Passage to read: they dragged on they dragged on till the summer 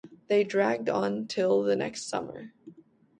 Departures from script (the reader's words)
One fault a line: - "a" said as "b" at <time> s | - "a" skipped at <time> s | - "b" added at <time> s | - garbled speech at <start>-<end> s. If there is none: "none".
- "they dragged on" skipped at 1.3 s
- "next" added at 1.7 s